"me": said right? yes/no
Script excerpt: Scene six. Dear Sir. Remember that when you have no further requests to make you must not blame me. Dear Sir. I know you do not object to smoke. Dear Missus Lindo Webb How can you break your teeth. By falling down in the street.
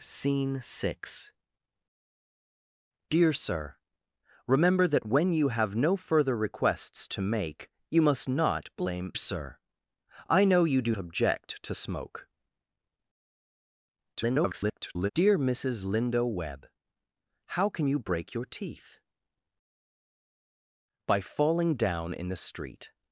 no